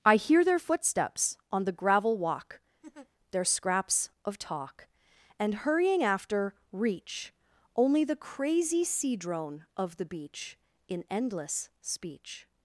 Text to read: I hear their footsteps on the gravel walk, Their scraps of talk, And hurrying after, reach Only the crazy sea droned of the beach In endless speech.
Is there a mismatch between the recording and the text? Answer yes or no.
yes